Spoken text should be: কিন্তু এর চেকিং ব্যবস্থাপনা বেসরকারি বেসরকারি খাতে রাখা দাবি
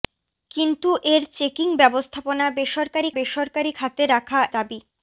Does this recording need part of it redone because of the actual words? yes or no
no